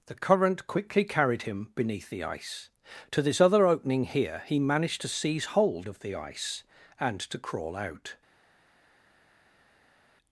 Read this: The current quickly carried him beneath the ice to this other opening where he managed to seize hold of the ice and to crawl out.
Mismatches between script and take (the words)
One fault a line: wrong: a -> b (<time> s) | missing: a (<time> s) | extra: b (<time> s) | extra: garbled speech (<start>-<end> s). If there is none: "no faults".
wrong: where -> here (4.0 s)